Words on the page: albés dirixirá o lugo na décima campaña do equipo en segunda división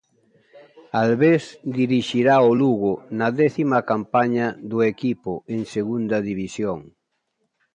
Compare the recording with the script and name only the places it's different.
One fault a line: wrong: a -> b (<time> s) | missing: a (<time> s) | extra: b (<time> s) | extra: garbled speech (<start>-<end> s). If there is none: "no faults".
no faults